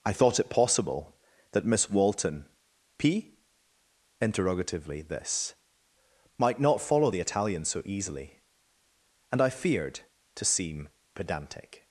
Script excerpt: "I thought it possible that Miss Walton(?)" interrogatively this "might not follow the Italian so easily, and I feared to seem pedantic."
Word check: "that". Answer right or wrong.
right